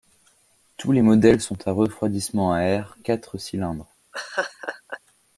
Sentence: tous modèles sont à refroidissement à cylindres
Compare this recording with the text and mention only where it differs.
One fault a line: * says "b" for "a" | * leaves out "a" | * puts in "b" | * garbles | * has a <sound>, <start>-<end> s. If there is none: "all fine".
* puts in "les"
* puts in "air quatre"
* has a laugh, 4.1-5.0 s